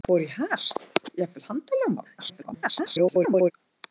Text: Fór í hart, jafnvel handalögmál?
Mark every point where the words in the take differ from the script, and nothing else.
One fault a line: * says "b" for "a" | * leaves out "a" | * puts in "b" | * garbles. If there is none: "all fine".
* garbles